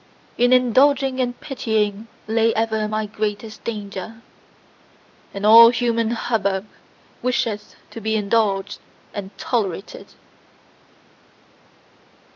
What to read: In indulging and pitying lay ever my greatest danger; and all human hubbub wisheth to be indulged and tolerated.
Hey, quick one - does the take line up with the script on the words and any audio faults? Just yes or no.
yes